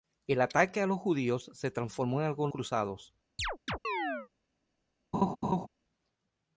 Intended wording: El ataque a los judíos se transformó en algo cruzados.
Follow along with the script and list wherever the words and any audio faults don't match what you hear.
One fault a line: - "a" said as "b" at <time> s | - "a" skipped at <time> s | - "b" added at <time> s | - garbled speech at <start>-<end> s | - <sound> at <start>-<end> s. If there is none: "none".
- chirp at 3.4-4.3 s
- laugh at 5.1-5.7 s